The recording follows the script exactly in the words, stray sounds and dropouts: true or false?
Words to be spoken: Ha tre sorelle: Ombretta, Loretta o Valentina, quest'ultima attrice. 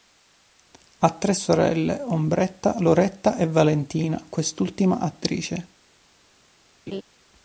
false